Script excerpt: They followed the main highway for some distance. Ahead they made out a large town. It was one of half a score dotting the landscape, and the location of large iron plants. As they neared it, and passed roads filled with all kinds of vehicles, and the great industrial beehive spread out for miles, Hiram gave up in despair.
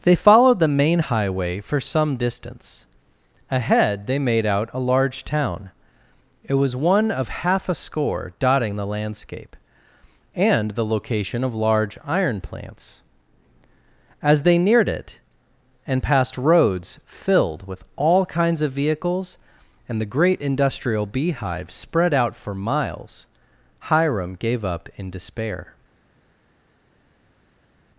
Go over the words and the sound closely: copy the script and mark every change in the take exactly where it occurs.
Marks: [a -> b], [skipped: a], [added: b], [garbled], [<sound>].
They followed the main highway for some distance. Ahead they made out a large town. It was one of half a score dotting the landscape, and the location of large iron plants. As they neared it, and passed roads filled with all kinds of vehicles, and the great industrial beehive spread out for miles, Hiram gave up in despair.